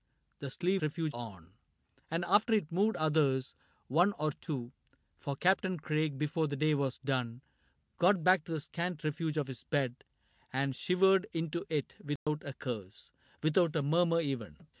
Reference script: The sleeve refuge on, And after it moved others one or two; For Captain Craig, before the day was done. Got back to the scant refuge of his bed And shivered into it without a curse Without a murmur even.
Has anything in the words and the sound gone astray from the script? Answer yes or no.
yes